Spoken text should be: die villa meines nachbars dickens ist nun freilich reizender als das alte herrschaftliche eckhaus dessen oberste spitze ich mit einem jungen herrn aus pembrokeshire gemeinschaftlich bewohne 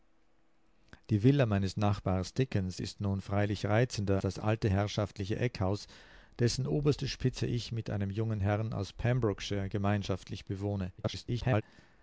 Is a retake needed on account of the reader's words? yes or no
yes